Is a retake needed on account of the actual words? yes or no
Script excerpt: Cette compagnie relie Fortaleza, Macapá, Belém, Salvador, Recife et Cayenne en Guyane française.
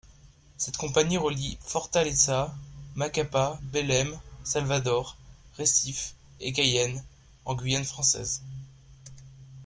no